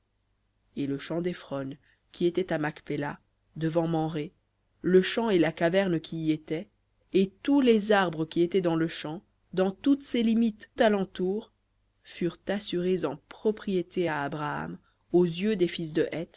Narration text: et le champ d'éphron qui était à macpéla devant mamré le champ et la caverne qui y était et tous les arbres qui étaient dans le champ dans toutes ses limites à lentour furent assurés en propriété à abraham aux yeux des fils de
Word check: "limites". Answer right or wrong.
right